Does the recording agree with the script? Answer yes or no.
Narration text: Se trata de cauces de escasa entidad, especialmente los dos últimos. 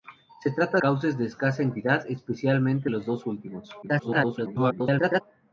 no